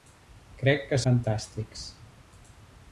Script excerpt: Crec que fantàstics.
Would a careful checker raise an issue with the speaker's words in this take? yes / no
no